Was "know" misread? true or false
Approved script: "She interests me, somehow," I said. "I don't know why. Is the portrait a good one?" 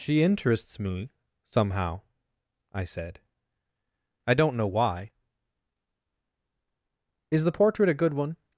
false